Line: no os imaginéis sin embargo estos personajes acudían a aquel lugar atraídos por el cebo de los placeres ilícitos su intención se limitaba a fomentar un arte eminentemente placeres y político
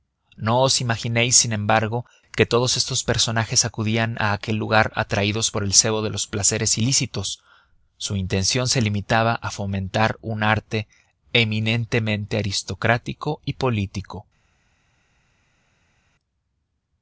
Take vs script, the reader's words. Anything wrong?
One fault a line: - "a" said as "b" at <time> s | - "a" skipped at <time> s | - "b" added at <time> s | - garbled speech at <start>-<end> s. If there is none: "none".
- "que todos" added at 2.4 s
- "placeres" said as "aristocrático" at 12.4 s